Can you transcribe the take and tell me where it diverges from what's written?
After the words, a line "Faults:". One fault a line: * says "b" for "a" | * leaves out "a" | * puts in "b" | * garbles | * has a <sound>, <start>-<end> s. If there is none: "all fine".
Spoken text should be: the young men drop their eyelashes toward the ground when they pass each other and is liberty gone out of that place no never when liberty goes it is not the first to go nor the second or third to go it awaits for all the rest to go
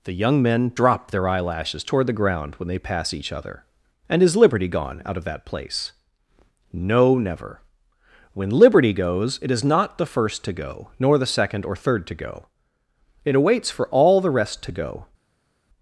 the young men drop their eyelashes toward the ground when they pass each other and is liberty gone out of that place no never when liberty goes it is not the first to go nor the second or third to go it awaits for all the rest to go
Faults:
all fine